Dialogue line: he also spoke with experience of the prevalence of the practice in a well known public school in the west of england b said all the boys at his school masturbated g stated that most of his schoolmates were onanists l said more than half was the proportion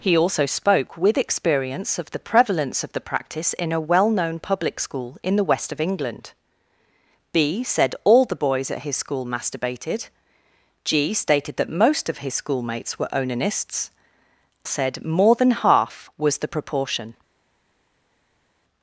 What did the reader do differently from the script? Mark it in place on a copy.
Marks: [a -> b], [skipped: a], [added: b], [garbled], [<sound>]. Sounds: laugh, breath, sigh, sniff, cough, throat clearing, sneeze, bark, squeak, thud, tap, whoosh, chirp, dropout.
he also spoke with experience of the prevalence of the practice in a well known public school in the west of england b said all the boys at his school masturbated g stated that most of his schoolmates were onanists [skipped: l] said more than half was the proportion